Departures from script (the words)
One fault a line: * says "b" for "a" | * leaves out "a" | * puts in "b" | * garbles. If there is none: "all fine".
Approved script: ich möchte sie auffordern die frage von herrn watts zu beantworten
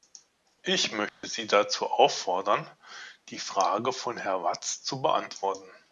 * puts in "dazu"